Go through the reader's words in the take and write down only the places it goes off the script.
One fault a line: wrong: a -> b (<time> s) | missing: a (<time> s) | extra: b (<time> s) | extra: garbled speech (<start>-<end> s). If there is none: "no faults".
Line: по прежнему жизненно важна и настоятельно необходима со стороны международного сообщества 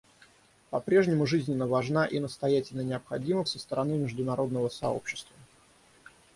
no faults